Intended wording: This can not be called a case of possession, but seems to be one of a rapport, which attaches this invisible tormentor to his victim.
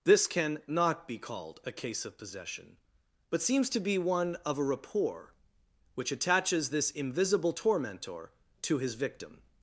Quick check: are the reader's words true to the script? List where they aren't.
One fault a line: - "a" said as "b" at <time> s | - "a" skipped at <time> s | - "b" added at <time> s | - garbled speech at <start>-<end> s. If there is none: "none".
none